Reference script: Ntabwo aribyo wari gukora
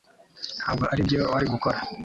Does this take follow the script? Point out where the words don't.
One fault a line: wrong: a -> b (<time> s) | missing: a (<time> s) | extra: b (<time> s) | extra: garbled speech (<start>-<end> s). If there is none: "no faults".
no faults